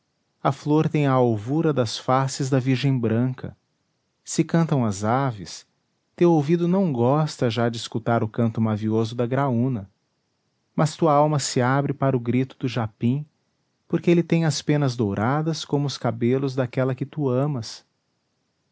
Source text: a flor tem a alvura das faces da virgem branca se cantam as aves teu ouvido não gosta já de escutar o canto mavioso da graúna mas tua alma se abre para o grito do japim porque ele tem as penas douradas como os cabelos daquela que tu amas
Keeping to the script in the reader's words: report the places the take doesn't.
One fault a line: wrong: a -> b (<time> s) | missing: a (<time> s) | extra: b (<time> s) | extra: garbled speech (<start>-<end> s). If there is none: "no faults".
no faults